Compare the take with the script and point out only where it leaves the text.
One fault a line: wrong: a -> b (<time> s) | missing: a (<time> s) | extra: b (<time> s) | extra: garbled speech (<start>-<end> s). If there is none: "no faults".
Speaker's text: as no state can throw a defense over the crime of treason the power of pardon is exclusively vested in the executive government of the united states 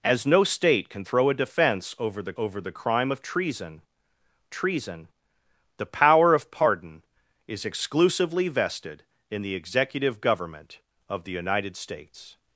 extra: over the (2.4 s)
extra: treason (4.5 s)